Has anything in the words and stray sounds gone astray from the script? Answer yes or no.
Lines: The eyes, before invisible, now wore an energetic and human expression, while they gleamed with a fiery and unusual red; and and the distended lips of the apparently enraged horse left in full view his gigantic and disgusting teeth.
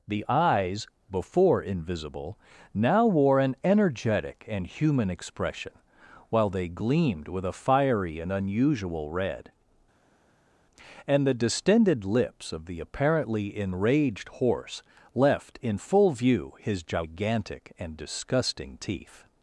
yes